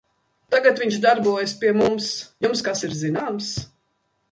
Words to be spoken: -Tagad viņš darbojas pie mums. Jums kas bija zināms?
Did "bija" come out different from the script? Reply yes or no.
yes